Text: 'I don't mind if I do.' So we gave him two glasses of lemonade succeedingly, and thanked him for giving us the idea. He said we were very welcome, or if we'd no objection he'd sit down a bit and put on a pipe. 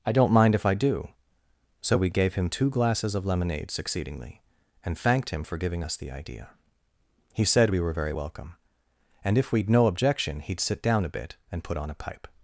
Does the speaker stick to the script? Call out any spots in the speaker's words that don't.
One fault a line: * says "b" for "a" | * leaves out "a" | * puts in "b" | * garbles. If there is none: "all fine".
* says "and" for "or"